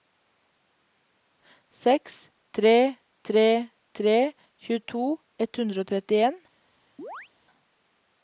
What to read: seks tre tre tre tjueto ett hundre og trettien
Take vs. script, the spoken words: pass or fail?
pass